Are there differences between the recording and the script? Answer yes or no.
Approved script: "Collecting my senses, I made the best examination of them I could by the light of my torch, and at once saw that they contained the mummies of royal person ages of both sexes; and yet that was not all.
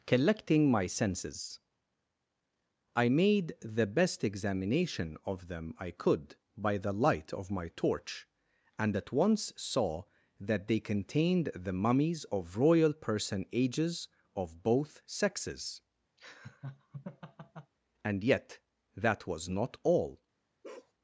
no